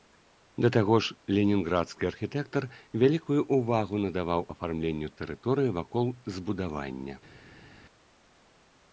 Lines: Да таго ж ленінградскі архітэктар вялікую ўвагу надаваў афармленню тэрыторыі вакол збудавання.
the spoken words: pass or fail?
pass